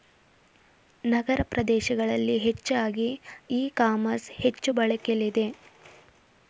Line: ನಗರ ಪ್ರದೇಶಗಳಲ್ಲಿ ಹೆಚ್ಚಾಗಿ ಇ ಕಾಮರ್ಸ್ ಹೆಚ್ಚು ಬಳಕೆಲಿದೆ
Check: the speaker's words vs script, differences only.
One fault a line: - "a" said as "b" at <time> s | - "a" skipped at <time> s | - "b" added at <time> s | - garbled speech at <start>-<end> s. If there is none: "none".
none